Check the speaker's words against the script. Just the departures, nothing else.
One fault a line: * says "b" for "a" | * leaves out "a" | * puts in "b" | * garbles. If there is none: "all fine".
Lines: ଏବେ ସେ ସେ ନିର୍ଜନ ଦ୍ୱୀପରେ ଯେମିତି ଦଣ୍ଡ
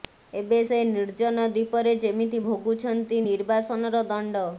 * leaves out "ସେ"
* puts in "ଭୋଗୁଛନ୍ତି ନିର୍ବାସନର"